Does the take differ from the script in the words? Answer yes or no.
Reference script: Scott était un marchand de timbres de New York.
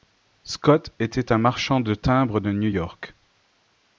no